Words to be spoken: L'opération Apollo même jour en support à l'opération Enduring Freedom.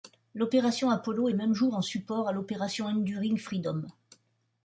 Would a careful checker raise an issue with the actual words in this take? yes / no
no